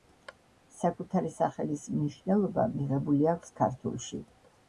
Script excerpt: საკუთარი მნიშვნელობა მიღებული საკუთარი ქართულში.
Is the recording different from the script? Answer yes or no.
yes